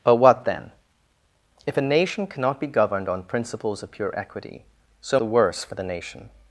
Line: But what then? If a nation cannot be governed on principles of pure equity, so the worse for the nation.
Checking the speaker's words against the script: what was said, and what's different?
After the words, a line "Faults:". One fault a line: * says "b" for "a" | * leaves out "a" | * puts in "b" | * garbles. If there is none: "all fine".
But what then? If a nation cannot be governed on principles of pure equity, so the worse for the nation.
Faults:
all fine